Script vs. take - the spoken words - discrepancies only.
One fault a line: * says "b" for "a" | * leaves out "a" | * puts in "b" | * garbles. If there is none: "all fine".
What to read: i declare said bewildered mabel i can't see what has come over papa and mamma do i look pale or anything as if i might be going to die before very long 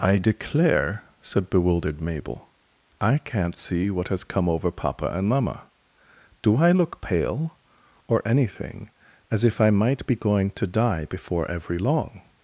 * says "every" for "very"